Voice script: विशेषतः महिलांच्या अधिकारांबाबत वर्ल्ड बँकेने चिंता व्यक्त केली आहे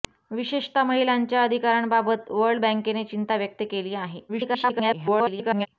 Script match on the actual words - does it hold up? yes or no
no